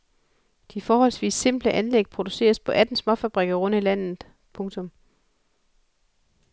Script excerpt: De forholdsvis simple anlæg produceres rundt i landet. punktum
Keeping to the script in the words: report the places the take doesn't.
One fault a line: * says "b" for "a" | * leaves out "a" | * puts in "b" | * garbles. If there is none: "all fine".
* puts in "på atten småfabrikker"